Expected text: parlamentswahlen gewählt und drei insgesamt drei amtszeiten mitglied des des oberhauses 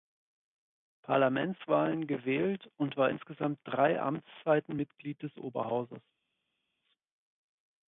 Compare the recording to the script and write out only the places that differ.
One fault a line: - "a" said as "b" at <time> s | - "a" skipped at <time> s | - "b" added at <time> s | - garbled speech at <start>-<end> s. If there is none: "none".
- "drei" said as "war" at 3.0 s
- "des" skipped at 5.4 s